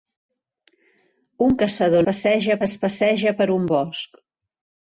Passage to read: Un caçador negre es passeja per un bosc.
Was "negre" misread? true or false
true